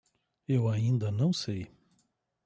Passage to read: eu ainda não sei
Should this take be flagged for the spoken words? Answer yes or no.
no